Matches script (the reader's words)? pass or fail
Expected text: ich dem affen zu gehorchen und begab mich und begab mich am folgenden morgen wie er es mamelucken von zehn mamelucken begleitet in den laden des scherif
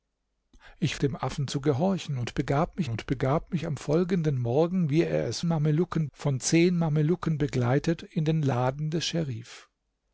pass